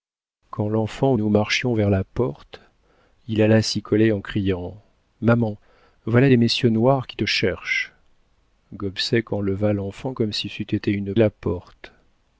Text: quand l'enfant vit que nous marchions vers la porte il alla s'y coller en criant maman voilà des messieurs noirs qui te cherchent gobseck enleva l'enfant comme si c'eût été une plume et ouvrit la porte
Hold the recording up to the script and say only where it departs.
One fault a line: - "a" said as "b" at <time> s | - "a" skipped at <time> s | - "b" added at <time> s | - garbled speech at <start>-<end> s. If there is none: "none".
- "vit que" skipped at 1.1 s
- "plume et ouvrit" skipped at 11.1 s